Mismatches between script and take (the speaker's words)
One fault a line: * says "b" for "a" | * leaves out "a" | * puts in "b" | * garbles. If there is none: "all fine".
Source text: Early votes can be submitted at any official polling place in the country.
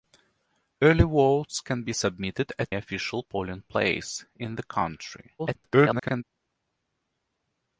* leaves out "any"
* garbles